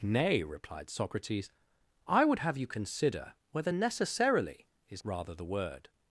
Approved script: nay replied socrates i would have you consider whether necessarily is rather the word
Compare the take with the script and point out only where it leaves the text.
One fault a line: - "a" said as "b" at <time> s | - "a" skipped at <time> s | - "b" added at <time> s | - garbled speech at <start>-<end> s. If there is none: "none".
none